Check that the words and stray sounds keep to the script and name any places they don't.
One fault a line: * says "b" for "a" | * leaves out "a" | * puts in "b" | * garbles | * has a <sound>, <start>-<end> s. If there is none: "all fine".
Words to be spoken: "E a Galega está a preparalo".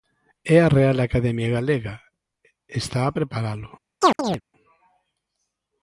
* puts in "Real Academia"
* has a chirp, 4.0-4.4 s